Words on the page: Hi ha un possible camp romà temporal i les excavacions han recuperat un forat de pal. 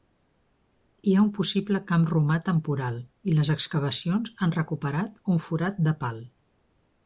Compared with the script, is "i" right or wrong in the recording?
right